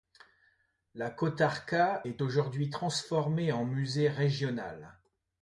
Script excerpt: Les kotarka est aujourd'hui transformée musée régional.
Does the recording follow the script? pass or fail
fail